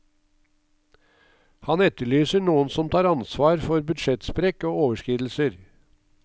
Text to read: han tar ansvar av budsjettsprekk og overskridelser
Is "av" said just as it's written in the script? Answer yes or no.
no